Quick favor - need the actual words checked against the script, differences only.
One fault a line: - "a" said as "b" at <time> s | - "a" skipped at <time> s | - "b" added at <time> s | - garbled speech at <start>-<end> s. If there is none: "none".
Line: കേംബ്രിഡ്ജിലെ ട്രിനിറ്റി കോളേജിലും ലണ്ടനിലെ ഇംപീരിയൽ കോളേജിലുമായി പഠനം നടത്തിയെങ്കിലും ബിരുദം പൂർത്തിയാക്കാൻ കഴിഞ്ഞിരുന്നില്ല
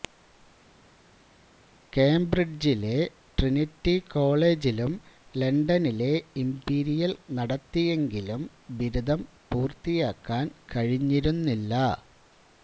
- "കോളേജിലുമായി പഠനം" skipped at 7.1 s